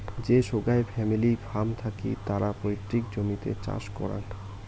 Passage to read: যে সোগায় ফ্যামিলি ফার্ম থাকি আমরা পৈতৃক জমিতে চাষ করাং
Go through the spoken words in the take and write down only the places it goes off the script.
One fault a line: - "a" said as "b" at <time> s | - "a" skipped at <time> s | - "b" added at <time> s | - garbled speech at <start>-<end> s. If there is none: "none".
- "আমরা" said as "তারা" at 2.3 s